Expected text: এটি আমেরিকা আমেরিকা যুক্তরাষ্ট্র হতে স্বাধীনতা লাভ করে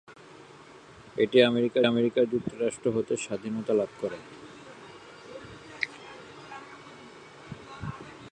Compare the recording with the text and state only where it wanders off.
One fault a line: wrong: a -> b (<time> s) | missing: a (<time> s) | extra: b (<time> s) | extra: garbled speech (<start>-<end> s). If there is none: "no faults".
no faults